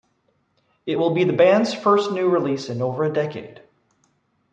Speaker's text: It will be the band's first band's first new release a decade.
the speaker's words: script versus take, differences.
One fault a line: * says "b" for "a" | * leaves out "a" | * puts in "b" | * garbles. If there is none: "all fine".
* says "new release in over" for "band's first new release"